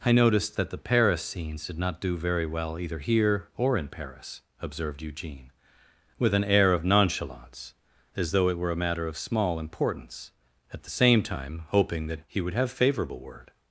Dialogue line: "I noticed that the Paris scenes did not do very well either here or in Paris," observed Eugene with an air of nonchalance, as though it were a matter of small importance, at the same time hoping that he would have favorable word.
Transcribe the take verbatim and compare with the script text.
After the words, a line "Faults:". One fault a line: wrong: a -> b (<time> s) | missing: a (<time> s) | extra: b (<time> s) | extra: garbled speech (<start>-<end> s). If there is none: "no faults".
"I noticed that the Paris scenes did not do very well either here or in Paris," observed Eugene with an air of nonchalance, as though it were a matter of small importance, at the same time hoping that he would have favorable word.
Faults:
no faults